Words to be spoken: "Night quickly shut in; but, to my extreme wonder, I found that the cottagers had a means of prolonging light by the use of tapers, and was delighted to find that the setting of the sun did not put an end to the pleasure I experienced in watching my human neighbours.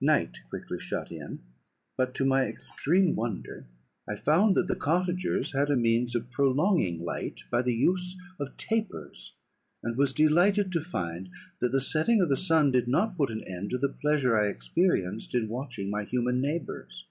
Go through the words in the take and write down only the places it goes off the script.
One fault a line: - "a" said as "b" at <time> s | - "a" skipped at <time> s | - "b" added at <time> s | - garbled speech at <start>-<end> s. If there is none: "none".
none